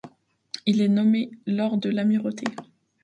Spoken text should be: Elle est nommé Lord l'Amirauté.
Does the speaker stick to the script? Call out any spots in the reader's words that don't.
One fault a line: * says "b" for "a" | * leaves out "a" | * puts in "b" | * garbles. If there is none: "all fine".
* says "Il" for "Elle"
* puts in "de"